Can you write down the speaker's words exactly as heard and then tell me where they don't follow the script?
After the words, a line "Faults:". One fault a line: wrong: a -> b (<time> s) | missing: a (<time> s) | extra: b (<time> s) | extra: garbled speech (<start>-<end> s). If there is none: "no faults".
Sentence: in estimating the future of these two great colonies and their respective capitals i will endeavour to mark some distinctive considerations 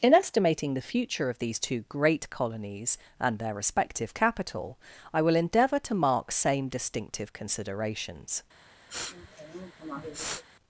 in estimating the future of these two great colonies and their respective capital i will endeavour to mark same distinctive considerations
Faults:
wrong: capitals -> capital (4.1 s)
wrong: some -> same (6.3 s)